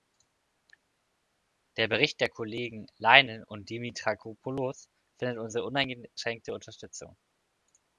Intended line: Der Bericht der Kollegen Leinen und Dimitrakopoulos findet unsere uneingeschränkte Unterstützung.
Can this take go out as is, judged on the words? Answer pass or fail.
pass